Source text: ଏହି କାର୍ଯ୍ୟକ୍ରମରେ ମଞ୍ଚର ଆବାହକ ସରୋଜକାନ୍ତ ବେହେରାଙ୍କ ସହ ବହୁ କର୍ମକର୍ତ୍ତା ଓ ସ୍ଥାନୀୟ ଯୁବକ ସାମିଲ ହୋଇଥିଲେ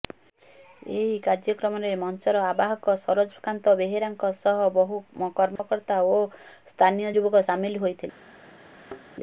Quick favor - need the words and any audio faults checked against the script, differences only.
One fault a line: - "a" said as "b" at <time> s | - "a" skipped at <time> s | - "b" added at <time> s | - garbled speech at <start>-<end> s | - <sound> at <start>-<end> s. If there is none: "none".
- dropout at 5.6-5.6 s
- thud at 8.7-9.0 s